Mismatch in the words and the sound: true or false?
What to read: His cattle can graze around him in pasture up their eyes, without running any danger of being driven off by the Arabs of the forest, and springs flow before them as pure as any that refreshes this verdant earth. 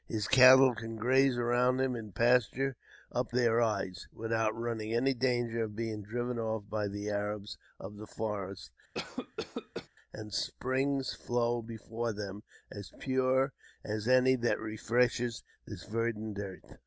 true